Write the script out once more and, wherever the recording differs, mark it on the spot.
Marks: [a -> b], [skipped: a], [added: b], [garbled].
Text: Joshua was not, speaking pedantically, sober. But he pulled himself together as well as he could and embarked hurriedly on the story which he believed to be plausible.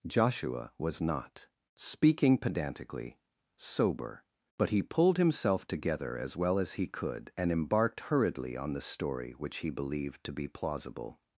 Joshua was not, speaking pedantically, sober. But he pulled himself together as well as he could and embarked hurriedly on the story which he believed to be plausible.